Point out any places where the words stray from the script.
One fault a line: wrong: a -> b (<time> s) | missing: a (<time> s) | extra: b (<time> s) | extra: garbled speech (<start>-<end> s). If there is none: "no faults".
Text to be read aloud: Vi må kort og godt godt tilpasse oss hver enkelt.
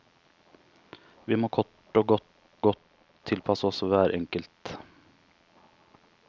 no faults